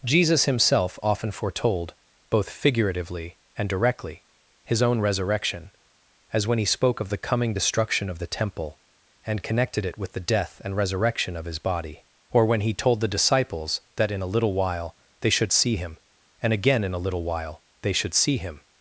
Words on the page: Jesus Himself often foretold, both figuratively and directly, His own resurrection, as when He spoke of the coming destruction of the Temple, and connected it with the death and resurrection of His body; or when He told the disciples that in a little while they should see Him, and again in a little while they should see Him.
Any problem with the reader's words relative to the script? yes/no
no